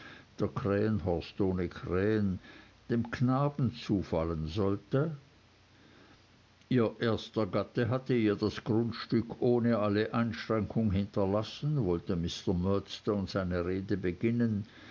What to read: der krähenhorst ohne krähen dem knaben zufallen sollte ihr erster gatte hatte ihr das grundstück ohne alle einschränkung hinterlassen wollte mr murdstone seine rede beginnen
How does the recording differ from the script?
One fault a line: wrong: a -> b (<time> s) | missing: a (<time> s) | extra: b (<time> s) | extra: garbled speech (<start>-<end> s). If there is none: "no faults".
no faults